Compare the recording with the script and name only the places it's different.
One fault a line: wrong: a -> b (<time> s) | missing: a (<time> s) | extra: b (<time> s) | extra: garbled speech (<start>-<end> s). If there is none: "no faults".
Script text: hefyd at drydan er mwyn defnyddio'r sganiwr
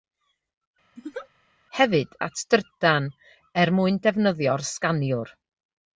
no faults